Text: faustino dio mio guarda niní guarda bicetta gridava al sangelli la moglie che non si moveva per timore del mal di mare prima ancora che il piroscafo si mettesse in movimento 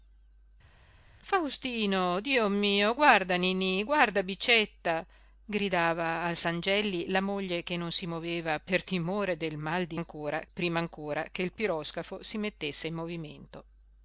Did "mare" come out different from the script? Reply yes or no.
yes